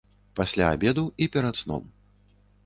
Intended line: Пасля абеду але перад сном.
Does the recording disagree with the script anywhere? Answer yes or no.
yes